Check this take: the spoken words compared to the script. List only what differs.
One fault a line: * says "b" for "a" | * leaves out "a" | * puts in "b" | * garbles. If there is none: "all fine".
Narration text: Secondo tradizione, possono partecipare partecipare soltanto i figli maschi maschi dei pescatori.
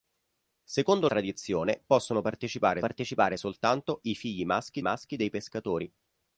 all fine